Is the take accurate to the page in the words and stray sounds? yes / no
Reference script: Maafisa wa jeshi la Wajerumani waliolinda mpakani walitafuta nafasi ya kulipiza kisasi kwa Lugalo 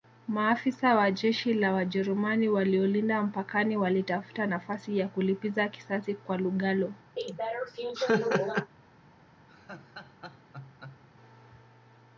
no